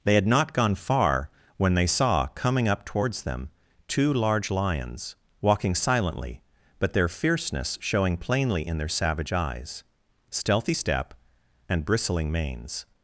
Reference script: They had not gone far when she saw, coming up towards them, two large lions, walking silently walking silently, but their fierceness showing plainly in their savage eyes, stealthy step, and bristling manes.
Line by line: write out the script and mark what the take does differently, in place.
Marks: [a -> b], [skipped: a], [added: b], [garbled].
They had not gone far when [she -> they] saw, coming up towards them, two large lions, walking silently [skipped: walking silently,] but their fierceness showing plainly in their savage eyes, stealthy step, and bristling manes.